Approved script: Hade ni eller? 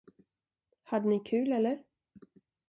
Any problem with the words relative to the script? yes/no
yes